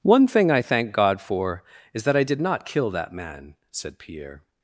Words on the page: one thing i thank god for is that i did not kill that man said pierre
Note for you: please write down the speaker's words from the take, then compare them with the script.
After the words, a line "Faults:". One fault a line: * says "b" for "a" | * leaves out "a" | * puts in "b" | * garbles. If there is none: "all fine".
one thing i thank god for is that i did not kill that man said pierre
Faults:
all fine